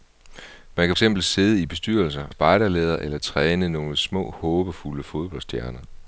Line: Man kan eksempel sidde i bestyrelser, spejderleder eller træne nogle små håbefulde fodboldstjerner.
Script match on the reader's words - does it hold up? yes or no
yes